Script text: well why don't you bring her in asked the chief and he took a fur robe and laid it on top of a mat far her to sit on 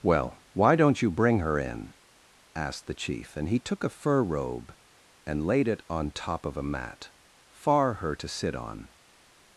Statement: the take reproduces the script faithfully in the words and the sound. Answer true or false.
true